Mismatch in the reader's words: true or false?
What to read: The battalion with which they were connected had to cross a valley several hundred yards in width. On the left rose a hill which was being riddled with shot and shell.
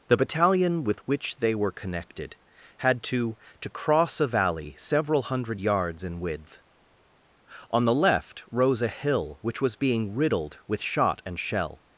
true